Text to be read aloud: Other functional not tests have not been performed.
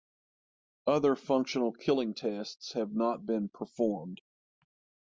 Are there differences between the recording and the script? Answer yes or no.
yes